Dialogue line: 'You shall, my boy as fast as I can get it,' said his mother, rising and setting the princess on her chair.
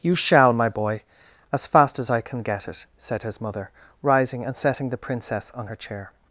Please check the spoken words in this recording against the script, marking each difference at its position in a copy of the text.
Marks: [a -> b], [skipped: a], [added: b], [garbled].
'You shall, my boy as fast as I can get it,' said his mother, rising and setting the princess on her chair.